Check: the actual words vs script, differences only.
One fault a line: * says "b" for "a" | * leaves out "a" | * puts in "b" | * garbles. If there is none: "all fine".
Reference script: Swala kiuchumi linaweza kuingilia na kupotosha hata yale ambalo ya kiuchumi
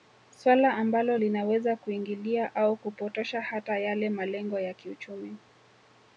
* says "ambalo" for "kiuchumi"
* says "au" for "na"
* says "malengo" for "ambalo"